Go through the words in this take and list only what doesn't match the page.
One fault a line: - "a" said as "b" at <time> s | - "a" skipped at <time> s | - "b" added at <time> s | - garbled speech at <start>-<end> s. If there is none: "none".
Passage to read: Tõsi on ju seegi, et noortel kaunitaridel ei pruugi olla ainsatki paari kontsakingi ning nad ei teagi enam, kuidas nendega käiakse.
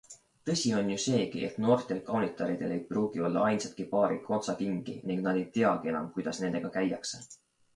none